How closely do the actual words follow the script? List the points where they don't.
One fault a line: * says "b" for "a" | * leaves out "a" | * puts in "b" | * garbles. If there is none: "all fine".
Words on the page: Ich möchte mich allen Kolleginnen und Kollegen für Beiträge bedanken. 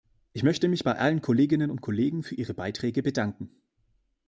* puts in "bei"
* puts in "ihre"